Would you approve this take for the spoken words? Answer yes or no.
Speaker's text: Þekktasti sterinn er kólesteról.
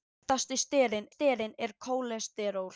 no